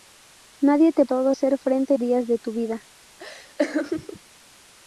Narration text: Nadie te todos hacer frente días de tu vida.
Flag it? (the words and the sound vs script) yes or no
yes